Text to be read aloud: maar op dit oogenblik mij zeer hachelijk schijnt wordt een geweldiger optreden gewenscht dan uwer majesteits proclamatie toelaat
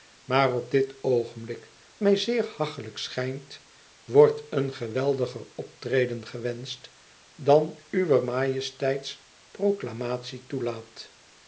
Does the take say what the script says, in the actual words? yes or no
yes